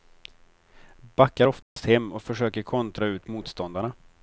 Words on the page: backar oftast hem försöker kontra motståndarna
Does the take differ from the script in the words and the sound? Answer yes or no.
yes